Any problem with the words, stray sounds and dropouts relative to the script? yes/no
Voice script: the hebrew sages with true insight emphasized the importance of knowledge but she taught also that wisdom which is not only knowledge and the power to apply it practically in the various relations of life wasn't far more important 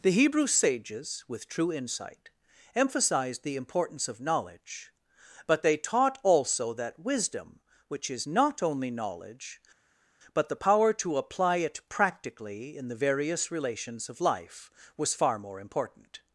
yes